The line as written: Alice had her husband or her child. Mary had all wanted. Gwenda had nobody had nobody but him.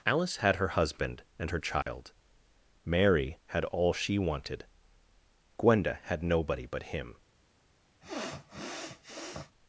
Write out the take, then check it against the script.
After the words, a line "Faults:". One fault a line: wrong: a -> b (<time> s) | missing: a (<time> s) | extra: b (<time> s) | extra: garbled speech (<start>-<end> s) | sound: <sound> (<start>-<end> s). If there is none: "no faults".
Alice had her husband and her child. Mary had all she wanted. Gwenda had nobody but him.
Faults:
wrong: or -> and (1.4 s)
sound: dropout (1.8-1.9 s)
extra: she (3.9 s)
missing: had nobody (6.7 s)
sound: sniff (8.0-9.5 s)